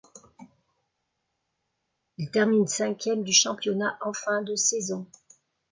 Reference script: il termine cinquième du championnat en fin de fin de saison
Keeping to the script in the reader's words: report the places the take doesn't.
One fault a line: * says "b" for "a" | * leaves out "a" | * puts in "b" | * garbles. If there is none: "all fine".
* leaves out "fin de"